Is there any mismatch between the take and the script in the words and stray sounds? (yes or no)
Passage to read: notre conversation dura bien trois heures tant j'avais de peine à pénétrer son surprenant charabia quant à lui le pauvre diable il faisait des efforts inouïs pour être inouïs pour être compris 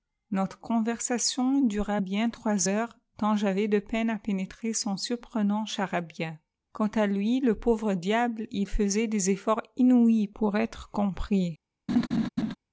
yes